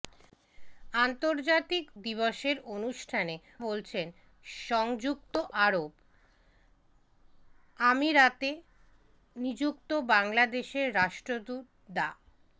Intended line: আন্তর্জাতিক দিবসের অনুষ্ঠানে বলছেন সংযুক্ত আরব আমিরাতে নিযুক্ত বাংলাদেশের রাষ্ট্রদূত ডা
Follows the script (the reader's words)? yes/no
yes